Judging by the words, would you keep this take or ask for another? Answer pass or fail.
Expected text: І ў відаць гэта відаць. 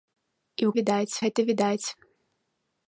pass